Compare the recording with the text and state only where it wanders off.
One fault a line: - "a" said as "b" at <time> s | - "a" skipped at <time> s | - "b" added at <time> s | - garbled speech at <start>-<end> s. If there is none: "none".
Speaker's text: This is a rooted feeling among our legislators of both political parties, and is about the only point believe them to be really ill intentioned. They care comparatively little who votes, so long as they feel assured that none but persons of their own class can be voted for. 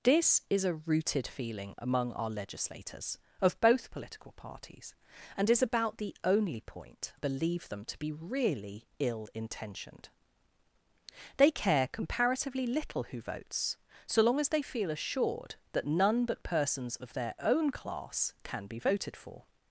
none